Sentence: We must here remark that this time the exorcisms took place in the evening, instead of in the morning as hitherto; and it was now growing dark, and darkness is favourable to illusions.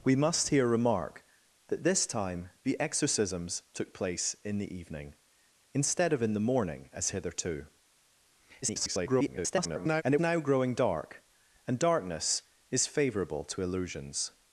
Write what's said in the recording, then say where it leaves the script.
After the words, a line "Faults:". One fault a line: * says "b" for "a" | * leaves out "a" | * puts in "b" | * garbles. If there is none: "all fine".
We must here remark that this time the exorcisms took place in the evening, instead of in the morning as hitherto; [garbled] and it now growing dark, and darkness is favourable to illusions.
Faults:
* garbles
* leaves out "was"